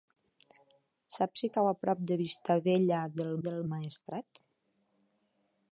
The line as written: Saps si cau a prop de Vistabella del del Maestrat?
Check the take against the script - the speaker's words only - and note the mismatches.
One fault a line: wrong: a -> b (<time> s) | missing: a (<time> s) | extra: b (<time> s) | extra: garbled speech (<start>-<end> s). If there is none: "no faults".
no faults